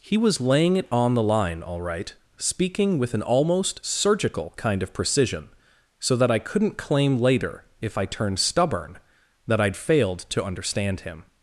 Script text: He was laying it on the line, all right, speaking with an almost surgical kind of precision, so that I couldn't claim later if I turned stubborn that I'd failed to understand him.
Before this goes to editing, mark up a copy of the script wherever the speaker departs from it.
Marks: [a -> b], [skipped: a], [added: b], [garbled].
He was laying it on the line, all right, speaking with an almost surgical kind of precision, so that I couldn't claim later if I turned stubborn that I'd failed to understand him.